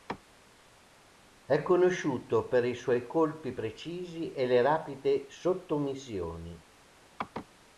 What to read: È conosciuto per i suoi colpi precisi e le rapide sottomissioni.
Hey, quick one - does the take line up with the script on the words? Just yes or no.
yes